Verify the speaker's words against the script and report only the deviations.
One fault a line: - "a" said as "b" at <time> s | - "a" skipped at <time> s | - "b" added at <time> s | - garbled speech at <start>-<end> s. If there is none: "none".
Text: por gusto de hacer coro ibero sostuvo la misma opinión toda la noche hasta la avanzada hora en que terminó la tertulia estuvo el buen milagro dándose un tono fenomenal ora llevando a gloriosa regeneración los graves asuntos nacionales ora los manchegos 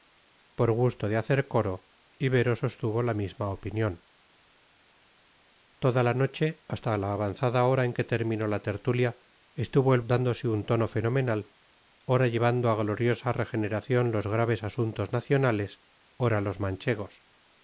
- "buen milagro" skipped at 10.0 s